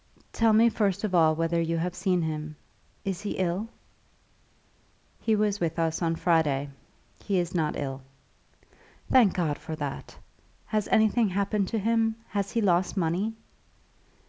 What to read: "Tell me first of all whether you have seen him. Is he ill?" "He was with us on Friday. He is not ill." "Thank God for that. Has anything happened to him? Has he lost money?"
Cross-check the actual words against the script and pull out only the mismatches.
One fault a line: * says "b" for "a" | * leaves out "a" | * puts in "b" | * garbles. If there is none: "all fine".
all fine